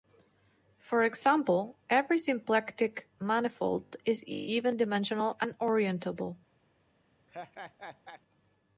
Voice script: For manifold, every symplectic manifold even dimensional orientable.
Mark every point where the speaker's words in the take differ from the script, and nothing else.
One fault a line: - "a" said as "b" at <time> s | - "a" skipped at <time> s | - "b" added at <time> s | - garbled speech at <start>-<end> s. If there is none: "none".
- "manifold" said as "example" at 1.0 s
- "is" added at 4.0 s
- "and" added at 5.4 s